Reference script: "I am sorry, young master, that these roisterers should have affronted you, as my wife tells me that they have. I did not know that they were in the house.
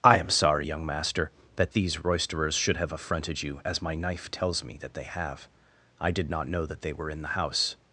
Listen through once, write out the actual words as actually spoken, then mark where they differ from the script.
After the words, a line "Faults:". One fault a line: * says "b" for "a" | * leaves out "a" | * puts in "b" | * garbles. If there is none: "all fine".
"I am sorry, young master, that these roisterers should have affronted you, as my knife tells me that they have. I did not know that they were in the house.
Faults:
* says "knife" for "wife"